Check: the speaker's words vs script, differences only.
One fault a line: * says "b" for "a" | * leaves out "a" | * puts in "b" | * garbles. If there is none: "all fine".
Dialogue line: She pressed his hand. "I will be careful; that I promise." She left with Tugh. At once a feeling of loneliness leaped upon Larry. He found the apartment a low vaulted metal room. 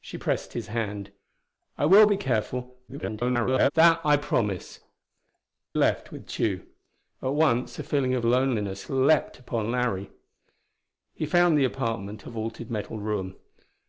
* garbles
* leaves out "She"
* leaves out "low"